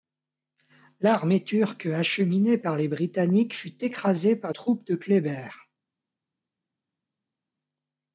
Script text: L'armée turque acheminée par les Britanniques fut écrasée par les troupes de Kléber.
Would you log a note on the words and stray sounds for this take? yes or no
yes